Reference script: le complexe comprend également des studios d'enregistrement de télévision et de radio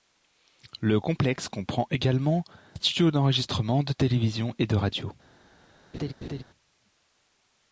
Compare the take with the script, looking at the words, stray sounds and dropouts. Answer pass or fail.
fail